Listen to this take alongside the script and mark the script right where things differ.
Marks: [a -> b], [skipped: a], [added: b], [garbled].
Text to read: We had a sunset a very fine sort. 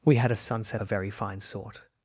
We had a sunset a very fine sort.